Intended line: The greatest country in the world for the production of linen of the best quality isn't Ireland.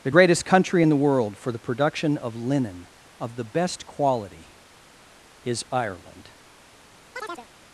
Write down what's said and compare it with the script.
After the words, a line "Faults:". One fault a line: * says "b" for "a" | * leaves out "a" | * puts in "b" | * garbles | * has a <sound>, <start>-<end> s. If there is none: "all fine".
The greatest country in the world for the production of linen of the best quality is Ireland.
Faults:
* says "is" for "isn't"
* has a chirp, 7.1-7.5 s